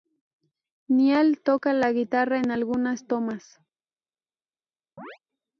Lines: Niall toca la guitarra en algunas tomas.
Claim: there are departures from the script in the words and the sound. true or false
true